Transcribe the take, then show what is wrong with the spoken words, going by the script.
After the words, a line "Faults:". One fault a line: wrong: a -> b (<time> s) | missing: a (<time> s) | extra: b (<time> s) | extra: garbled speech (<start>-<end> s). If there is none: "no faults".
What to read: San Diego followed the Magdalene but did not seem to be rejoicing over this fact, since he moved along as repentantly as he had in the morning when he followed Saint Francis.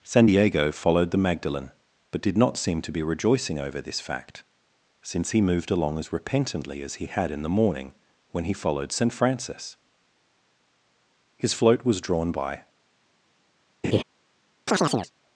San Diego followed the Magdalene but did not seem to be rejoicing over this fact, since he moved along as repentantly as he had in the morning when he followed Saint Francis. His float was drawn by
Faults:
extra: His float was drawn by (11.4 s)